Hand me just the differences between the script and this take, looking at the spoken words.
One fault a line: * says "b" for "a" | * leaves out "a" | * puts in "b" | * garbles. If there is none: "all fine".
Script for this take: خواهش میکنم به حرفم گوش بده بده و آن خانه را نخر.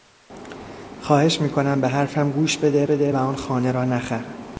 all fine